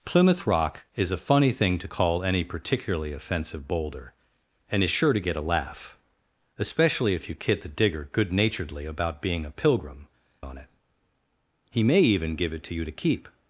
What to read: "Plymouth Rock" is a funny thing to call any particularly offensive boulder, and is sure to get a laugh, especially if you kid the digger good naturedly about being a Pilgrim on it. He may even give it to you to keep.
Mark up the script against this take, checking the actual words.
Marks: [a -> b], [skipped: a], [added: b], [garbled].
"Plymouth Rock" is a funny thing to call any particularly offensive boulder, and is sure to get a laugh, especially if you kid the digger good naturedly about being a Pilgrim on it. He may even give it to you to keep.